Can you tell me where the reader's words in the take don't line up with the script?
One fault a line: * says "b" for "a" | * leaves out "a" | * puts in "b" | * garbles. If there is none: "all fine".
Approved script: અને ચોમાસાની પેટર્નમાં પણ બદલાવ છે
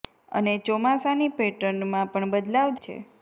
all fine